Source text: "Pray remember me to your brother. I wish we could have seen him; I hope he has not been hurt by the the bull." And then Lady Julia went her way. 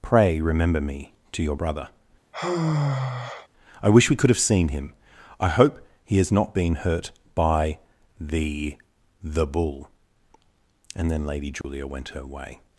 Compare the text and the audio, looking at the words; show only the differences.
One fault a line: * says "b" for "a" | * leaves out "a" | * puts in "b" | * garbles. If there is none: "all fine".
all fine